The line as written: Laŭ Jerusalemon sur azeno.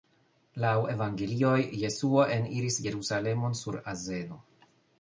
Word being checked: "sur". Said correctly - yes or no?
yes